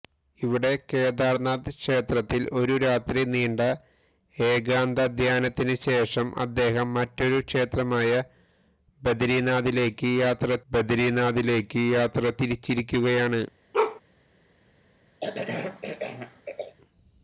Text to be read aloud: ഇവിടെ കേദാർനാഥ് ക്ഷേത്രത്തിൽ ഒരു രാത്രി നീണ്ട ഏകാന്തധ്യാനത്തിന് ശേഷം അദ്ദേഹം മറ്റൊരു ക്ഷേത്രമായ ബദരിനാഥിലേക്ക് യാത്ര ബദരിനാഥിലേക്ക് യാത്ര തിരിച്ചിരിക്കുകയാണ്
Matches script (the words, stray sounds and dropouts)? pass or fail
fail